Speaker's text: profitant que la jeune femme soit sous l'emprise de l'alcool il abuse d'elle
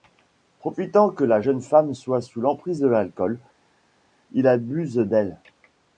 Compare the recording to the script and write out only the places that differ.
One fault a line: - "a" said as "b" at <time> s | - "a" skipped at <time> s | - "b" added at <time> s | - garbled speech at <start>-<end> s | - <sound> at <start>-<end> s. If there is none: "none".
none